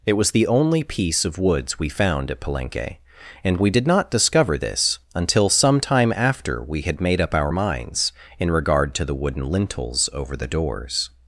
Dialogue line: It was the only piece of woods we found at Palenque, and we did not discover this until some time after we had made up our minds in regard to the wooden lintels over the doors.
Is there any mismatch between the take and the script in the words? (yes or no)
no